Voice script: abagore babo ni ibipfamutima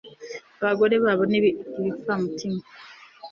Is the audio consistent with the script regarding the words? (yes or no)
yes